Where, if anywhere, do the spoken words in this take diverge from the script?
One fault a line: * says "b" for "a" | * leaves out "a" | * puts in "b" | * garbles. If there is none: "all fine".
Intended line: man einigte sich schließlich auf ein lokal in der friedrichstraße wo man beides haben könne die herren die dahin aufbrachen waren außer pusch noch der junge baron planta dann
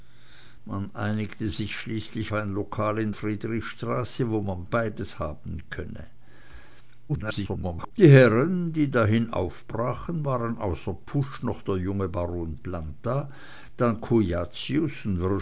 * leaves out "auf"
* leaves out "der"
* garbles